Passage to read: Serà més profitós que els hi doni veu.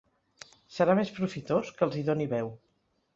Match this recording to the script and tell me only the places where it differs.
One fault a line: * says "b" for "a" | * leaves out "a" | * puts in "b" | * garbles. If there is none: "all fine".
all fine